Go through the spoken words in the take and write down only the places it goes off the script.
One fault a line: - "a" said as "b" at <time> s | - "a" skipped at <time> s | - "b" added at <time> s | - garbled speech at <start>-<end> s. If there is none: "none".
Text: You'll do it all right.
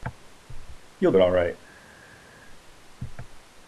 - "do" skipped at 1.1 s